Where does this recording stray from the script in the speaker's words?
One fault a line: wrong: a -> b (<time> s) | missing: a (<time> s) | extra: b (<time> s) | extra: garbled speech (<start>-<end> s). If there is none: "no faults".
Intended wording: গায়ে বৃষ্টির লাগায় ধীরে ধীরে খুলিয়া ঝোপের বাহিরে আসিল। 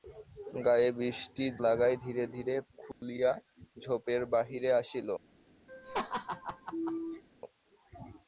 no faults